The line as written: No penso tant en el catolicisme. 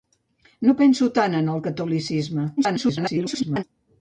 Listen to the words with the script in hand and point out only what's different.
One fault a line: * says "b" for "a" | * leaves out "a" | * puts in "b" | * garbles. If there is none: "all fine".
* garbles